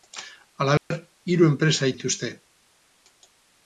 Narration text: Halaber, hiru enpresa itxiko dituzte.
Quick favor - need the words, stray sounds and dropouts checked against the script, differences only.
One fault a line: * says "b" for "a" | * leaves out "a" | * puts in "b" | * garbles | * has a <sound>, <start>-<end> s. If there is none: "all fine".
* has a dropout, 0.8-0.9 s
* leaves out "itxiko"